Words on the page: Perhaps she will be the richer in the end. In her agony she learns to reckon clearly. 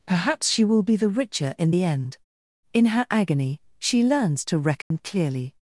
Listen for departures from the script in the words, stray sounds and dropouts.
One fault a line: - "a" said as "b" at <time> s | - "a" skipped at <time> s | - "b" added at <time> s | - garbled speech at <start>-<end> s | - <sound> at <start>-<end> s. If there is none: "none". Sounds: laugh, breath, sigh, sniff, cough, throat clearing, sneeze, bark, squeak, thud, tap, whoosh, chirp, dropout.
- dropout at 4.8-4.9 s